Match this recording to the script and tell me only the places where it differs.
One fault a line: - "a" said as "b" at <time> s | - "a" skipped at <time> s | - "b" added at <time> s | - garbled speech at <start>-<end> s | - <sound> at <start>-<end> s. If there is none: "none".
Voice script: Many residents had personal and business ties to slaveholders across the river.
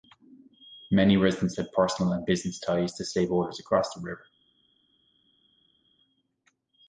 none